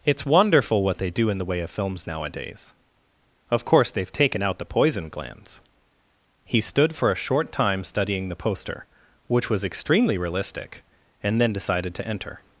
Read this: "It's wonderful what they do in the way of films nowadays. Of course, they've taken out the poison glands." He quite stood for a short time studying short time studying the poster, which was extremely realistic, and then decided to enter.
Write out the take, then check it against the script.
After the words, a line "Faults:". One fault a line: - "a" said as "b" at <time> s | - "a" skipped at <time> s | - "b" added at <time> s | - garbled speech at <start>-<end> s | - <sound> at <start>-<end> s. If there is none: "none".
"It's wonderful what they do in the way of films nowadays. Of course, they've taken out the poison glands." He stood for a short time studying the poster, which was extremely realistic, and then decided to enter.
Faults:
- "quite" skipped at 6.6 s
- "short time studying" skipped at 8.3 s